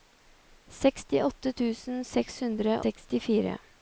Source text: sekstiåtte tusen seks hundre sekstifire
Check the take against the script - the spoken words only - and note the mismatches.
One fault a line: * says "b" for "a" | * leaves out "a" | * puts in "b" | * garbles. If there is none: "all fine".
all fine